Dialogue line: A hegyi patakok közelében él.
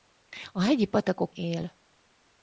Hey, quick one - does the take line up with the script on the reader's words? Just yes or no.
no